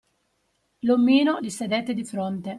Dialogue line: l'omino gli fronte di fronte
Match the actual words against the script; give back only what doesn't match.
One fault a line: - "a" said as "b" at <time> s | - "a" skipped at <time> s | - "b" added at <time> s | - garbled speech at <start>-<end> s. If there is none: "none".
- "fronte" said as "sedette" at 1.5 s